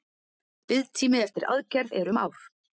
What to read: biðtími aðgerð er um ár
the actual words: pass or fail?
fail